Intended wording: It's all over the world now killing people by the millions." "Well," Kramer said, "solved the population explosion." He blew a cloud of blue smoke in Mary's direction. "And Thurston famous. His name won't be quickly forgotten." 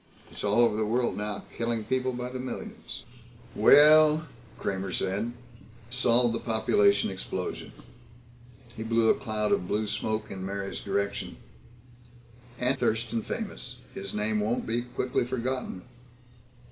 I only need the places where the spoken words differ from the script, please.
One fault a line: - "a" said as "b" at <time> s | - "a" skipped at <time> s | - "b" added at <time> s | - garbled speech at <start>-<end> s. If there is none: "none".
none